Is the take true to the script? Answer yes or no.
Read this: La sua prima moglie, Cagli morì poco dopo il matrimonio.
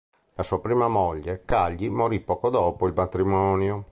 yes